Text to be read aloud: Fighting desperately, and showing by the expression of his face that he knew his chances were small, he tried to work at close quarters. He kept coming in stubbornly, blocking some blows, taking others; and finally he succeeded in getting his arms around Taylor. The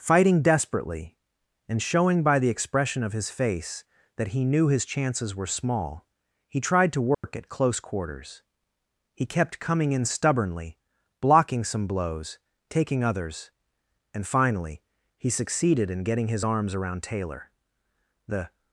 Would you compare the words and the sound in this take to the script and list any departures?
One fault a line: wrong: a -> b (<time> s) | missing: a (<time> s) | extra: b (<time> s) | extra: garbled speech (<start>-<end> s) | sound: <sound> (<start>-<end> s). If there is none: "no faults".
sound: dropout (7.1-7.2 s)